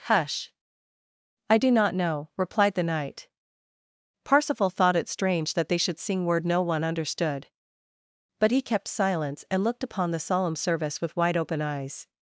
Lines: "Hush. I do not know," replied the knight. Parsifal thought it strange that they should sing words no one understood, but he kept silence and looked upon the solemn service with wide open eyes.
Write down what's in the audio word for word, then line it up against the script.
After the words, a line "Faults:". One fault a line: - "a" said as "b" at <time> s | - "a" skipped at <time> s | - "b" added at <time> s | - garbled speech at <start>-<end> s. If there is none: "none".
"Hush. I do not know," replied the knight. Parsifal thought it strange that they should sing word no one understood, but he kept silence and looked upon the solemn service with wide open eyes.
Faults:
- "words" said as "word" at 6.2 s